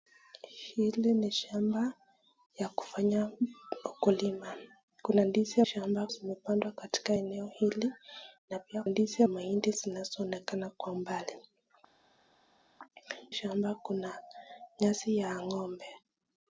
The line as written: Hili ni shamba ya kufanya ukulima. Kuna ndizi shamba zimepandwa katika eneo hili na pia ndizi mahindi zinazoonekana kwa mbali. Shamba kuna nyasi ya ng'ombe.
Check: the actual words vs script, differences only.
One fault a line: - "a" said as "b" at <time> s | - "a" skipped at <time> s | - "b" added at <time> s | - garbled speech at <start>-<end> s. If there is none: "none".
none